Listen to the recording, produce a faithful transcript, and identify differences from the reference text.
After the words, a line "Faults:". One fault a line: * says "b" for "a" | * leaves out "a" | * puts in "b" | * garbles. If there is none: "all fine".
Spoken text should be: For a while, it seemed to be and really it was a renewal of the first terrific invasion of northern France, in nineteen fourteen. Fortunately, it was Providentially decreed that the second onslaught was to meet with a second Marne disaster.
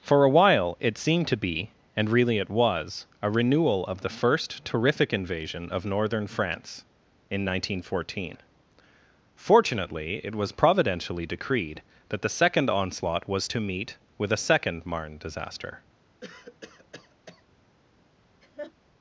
For a while, it seemed to be and really it was a renewal of the first terrific invasion of northern France, in nineteen fourteen. Fortunately, it was Providentially decreed that the second onslaught was to meet with a second Marne disaster.
Faults:
all fine